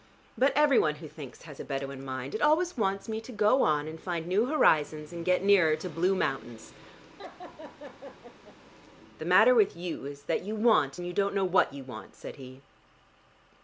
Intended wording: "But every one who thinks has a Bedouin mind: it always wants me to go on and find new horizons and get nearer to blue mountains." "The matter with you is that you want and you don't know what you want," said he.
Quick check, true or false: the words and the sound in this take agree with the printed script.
false